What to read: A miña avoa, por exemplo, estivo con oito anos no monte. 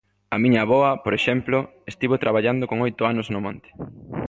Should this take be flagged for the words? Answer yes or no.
yes